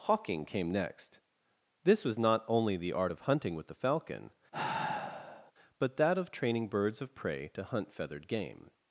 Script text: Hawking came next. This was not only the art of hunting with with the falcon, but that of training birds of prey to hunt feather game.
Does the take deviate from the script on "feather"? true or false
true